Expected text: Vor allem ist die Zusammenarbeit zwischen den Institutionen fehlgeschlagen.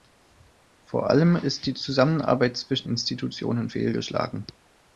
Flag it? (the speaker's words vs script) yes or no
yes